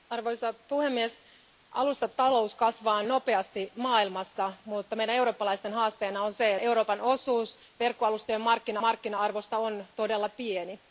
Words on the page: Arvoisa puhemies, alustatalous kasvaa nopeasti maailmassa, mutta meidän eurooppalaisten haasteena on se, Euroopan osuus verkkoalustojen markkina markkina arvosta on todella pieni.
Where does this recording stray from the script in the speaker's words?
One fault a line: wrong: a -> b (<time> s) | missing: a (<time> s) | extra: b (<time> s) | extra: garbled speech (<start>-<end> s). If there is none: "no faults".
no faults